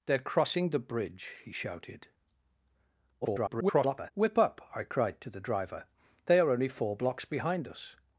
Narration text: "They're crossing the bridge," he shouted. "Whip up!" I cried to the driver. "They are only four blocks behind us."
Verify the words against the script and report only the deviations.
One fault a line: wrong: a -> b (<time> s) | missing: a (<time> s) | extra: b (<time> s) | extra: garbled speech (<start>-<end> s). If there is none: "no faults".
extra: garbled speech (3.2-4.1 s)